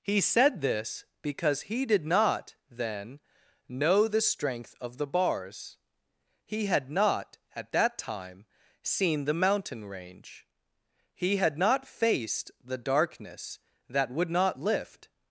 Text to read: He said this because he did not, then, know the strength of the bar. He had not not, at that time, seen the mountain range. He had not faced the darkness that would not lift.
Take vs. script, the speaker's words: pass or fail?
fail